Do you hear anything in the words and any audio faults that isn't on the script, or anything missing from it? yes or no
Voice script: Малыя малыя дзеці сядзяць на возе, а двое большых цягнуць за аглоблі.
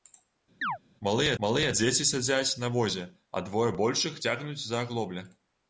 yes